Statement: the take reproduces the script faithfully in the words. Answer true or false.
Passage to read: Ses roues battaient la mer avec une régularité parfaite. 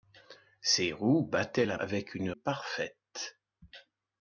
false